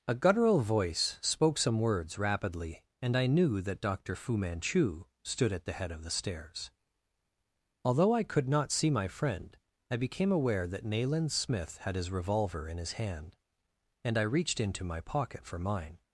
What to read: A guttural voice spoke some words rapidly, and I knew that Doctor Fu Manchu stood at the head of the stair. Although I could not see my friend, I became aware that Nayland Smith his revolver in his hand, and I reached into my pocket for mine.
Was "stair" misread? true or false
true